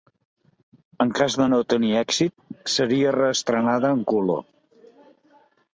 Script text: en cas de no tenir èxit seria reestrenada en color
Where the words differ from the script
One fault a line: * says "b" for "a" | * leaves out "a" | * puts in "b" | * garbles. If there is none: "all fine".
all fine